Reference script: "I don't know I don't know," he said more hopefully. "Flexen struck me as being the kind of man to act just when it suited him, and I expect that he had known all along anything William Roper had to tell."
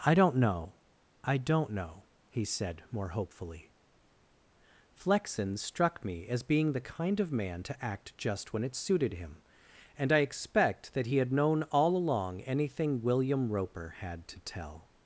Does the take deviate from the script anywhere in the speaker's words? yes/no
no